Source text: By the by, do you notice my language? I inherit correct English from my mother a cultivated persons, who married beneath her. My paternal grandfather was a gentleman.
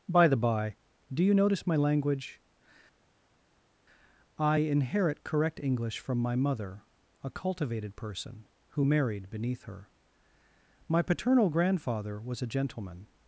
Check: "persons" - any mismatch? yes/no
yes